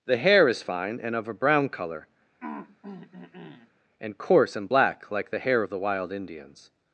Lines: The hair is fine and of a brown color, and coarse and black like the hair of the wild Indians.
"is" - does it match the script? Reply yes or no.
yes